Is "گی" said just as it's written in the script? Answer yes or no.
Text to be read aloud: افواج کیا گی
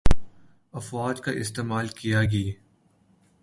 yes